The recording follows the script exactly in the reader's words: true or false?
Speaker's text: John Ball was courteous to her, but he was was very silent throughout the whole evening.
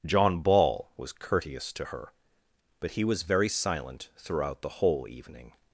false